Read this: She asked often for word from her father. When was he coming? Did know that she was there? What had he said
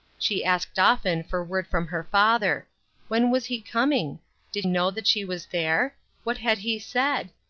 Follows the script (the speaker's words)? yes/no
yes